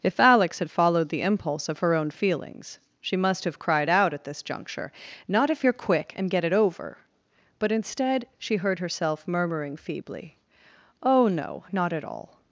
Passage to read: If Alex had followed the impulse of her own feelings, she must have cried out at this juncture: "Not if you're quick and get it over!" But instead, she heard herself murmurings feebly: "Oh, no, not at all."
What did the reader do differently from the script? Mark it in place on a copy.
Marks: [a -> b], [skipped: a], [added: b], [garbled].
If Alex had followed the impulse of her own feelings, she must have cried out at this juncture: "Not if you're quick and get it over!" But instead, she heard herself [murmurings -> murmuring] feebly: "Oh, no, not at all."